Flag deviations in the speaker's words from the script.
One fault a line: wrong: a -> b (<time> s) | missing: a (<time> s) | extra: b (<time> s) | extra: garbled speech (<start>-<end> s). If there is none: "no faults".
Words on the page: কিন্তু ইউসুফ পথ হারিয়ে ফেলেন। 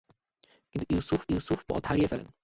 extra: ইউসুফ (1.3 s)